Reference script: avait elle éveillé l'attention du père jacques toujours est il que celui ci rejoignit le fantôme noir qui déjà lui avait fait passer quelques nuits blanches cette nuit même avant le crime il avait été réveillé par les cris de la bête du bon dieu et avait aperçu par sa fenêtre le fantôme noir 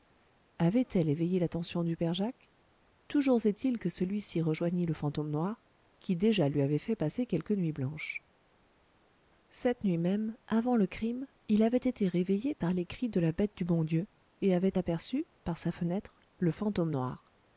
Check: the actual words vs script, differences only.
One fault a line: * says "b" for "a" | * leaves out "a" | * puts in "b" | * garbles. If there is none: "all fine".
all fine